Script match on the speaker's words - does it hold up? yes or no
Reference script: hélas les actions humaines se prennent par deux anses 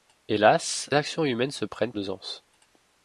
no